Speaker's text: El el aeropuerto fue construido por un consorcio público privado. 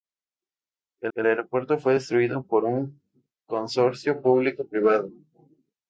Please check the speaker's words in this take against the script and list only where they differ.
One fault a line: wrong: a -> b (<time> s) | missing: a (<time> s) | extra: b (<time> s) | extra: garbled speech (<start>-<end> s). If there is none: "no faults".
no faults